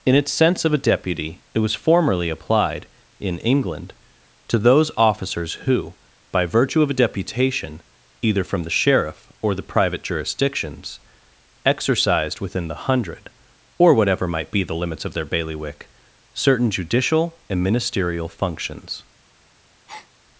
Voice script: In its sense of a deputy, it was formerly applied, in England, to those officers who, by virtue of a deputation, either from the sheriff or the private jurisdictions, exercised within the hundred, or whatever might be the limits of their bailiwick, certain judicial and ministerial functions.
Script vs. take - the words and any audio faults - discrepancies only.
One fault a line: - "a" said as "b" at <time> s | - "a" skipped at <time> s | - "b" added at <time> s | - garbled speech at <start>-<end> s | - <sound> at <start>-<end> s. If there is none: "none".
- breath at 19.9-20.1 s